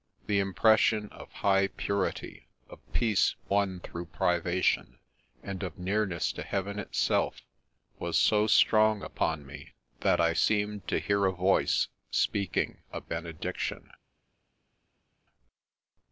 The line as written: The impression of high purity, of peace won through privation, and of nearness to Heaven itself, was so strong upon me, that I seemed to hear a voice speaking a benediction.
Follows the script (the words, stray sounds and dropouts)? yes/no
yes